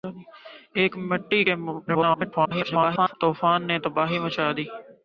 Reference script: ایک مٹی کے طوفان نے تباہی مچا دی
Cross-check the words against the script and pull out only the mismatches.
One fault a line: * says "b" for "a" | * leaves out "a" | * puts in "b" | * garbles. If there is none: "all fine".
* garbles